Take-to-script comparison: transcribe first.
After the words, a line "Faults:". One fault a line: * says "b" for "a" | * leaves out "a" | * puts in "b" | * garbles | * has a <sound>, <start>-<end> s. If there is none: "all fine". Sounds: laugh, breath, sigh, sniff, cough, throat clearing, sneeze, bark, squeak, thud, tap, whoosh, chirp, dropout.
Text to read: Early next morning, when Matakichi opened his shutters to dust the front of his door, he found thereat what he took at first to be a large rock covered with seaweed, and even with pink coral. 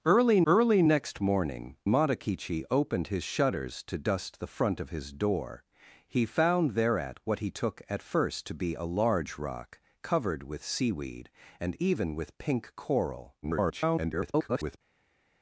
Early early next morning, Matakichi opened his shutters to dust the front of his door, he found thereat what he took at first to be a large rock covered with seaweed, and even with pink coral. [garbled]
Faults:
* puts in "early"
* leaves out "when"
* garbles